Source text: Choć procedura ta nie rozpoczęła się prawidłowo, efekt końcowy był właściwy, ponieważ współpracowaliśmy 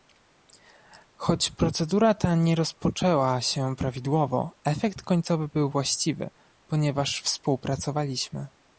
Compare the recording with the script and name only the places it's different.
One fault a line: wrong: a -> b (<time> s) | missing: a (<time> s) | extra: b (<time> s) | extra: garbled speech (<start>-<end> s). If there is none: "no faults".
no faults